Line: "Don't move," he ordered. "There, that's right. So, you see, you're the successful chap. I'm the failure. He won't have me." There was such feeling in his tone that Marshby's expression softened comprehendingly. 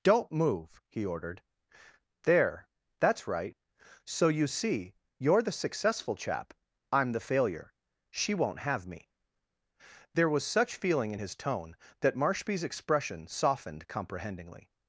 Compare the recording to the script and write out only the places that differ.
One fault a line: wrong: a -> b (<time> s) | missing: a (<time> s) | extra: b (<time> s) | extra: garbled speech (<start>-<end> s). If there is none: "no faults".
wrong: He -> She (8.1 s)